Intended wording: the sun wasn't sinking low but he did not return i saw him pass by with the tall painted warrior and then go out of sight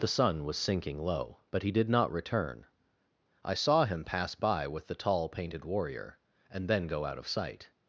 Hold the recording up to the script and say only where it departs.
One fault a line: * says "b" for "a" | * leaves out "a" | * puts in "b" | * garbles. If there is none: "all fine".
* says "was" for "wasn't"